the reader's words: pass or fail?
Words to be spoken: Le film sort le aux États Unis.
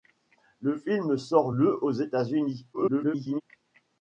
fail